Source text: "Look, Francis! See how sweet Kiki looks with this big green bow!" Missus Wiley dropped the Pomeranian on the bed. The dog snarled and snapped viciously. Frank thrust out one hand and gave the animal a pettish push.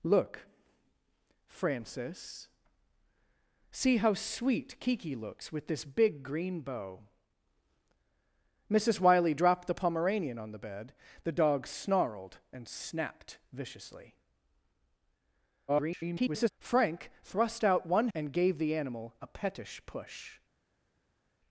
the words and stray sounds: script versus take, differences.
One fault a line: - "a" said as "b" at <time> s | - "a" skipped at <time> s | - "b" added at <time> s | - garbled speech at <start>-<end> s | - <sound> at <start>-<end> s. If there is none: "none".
- garbled speech at 15.7-16.5 s
- "hand" skipped at 18.1 s